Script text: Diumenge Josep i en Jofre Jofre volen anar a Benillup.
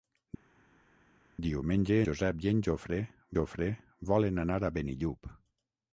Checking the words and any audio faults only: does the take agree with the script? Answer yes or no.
yes